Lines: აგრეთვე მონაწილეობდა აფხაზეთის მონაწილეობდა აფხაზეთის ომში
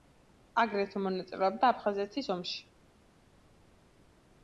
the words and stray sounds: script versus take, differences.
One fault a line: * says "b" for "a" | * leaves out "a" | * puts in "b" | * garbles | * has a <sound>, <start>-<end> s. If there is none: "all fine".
* leaves out "მონაწილეობდა აფხაზეთის"